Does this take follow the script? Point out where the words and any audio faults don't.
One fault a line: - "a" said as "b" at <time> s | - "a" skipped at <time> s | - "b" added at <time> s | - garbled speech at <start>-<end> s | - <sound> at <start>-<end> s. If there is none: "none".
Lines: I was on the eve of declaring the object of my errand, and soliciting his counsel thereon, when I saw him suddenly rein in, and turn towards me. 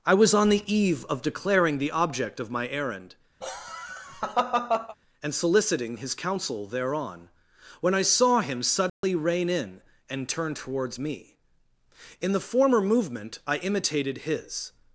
- laugh at 3.4-5.0 s
- dropout at 8.9-9.0 s
- "In the former movement I imitated his" added at 12.2 s